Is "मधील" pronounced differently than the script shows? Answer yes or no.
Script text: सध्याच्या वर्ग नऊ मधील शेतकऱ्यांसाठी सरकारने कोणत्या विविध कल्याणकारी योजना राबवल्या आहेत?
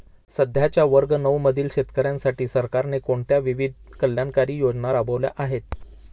no